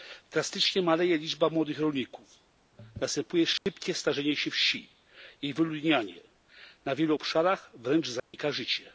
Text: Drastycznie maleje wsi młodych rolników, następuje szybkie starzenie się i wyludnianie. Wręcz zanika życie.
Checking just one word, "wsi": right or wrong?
wrong